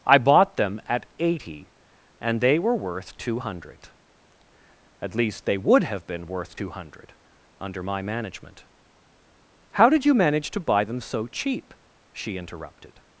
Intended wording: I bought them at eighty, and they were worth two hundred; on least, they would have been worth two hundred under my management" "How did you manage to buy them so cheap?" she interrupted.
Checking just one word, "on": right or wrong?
wrong